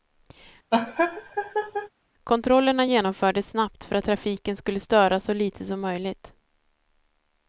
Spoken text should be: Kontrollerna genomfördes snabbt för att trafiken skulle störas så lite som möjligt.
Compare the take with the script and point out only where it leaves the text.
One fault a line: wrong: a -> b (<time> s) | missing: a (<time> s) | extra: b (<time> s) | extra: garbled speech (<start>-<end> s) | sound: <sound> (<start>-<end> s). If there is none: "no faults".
sound: laugh (0.7-1.9 s)